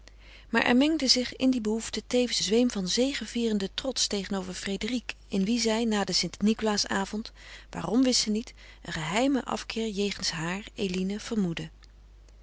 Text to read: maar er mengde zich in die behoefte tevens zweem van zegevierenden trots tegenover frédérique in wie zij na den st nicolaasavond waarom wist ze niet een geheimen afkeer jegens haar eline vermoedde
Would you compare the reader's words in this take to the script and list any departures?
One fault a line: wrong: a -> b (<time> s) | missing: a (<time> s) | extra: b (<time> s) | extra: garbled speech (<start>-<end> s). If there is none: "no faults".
no faults